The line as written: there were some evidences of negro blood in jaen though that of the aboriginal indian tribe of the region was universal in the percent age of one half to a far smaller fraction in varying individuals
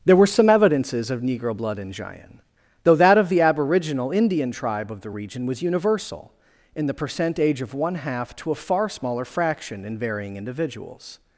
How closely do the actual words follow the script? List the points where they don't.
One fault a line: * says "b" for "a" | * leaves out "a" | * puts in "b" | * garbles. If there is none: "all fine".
all fine